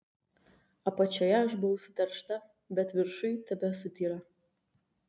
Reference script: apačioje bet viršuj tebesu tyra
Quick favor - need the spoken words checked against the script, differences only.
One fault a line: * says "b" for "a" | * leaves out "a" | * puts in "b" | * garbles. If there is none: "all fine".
* puts in "aš buvau suteršta"